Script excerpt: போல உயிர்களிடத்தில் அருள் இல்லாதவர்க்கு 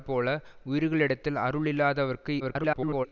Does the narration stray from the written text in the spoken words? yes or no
yes